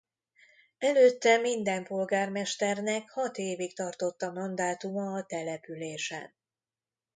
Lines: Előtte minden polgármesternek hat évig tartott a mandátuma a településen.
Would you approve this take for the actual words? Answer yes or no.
yes